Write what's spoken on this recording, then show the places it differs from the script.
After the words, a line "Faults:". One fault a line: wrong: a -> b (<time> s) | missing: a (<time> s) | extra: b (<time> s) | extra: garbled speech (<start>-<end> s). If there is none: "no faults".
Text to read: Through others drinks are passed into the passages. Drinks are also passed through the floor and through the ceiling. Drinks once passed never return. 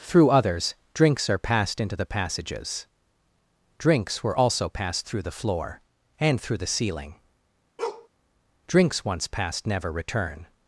Through others drinks are passed into the passages. Drinks were also passed through the floor and through the ceiling. Drinks once passed never return.
Faults:
wrong: are -> were (4.2 s)